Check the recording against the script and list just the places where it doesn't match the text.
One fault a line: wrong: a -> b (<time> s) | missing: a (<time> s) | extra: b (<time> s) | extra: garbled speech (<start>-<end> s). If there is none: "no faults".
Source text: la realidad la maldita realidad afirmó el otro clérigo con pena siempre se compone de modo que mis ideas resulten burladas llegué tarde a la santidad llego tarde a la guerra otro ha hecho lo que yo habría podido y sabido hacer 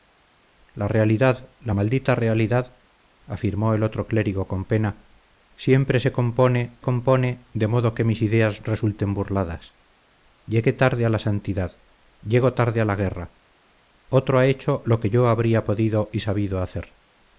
extra: compone (6.8 s)